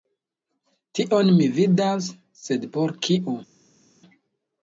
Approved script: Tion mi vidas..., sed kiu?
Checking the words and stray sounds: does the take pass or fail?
fail